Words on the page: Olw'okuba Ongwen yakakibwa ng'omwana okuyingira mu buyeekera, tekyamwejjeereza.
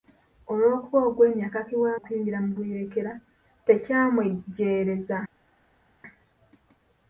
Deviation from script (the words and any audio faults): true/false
true